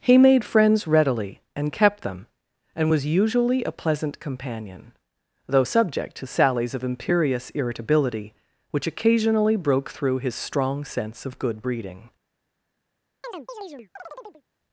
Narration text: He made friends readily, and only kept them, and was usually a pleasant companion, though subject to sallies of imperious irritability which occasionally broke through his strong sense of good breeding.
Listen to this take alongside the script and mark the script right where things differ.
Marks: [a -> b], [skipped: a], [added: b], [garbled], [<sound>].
He made friends readily, and [skipped: only] kept them, and was usually a pleasant companion, though subject to sallies of imperious irritability which occasionally broke through his strong sense of good breeding. [chirp]